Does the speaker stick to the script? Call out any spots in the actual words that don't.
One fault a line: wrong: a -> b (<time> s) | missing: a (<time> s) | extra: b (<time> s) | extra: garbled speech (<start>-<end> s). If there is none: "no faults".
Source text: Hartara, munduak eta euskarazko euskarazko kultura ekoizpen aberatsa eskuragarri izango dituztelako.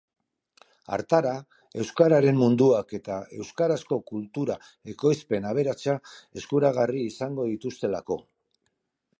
extra: euskararen (1.8 s)
missing: euskarazko (4.0 s)